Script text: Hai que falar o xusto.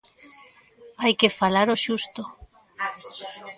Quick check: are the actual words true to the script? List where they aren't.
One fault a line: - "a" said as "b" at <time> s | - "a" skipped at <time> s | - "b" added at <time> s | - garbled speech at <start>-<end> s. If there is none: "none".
none